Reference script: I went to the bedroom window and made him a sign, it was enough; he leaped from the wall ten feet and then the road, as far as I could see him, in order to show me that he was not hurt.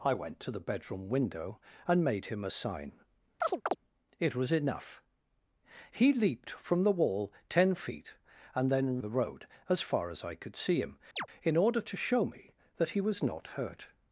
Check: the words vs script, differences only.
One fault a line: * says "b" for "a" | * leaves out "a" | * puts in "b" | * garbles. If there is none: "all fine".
all fine